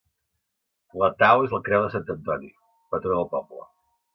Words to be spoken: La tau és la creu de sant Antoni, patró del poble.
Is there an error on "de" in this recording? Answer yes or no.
no